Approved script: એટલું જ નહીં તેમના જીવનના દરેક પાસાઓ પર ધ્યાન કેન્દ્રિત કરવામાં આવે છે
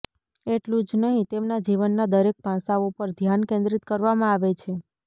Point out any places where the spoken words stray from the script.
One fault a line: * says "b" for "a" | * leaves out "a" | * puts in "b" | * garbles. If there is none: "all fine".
all fine